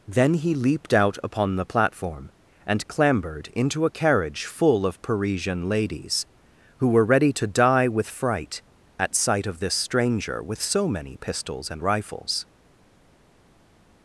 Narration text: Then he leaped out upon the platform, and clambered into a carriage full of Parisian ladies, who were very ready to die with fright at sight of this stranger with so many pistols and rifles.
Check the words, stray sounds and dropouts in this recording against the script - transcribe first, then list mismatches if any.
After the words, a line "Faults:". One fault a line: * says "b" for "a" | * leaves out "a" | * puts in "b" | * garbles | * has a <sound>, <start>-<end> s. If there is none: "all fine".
Then he leaped out upon the platform, and clambered into a carriage full of Parisian ladies, who were ready to die with fright at sight of this stranger with so many pistols and rifles.
Faults:
* leaves out "very"